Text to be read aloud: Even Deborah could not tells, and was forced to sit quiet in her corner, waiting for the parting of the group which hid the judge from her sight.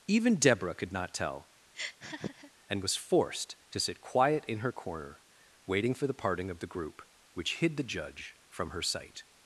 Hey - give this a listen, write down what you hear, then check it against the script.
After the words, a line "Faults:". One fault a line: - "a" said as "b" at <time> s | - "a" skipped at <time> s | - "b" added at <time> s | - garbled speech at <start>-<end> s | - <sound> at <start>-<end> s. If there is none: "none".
Even Deborah could not tell, and was forced to sit quiet in her corner, waiting for the parting of the group which hid the judge from her sight.
Faults:
- "tells" said as "tell" at 1.1 s
- laugh at 1.7-2.5 s